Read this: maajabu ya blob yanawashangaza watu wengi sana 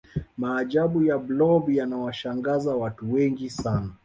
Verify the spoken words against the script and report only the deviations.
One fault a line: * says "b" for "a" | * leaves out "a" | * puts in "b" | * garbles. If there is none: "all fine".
all fine